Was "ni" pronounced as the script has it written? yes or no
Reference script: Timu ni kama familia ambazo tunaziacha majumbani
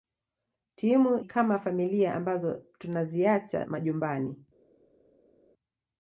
no